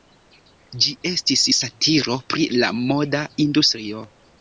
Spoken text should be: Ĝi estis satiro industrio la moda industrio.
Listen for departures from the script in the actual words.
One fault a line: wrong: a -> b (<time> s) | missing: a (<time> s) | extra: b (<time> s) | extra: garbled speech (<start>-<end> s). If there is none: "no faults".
wrong: industrio -> pri (2.4 s)